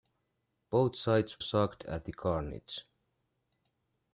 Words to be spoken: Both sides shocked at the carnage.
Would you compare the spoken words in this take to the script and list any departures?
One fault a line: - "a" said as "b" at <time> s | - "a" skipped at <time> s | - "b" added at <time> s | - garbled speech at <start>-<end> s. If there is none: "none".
none